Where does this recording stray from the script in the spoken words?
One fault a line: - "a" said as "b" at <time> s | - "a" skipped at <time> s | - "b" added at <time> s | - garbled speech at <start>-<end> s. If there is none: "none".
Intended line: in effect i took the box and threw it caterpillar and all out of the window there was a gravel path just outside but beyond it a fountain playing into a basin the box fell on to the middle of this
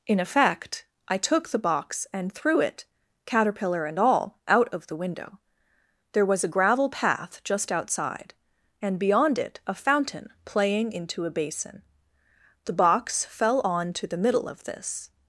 - "but" said as "and" at 8.8 s